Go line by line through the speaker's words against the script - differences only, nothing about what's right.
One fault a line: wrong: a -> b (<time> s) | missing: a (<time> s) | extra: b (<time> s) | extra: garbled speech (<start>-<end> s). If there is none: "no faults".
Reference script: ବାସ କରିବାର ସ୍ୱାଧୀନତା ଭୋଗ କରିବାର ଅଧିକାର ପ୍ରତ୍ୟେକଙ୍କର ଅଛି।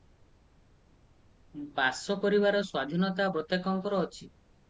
missing: ଭୋଗ କରିବାର ଅଧିକାର (3.3 s)